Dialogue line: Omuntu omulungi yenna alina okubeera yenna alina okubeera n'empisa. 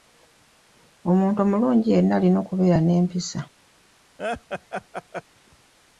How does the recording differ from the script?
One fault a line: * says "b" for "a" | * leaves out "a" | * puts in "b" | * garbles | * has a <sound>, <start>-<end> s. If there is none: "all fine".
* leaves out "yenna alina okubeera"
* has a laugh, 4.2-5.2 s